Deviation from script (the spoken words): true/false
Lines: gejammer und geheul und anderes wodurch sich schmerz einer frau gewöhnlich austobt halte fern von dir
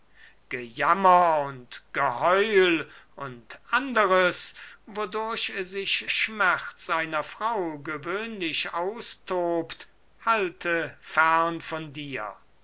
false